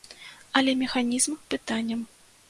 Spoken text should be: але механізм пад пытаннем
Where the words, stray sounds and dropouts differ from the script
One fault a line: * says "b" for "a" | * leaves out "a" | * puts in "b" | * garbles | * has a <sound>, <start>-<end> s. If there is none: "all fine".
* leaves out "пад"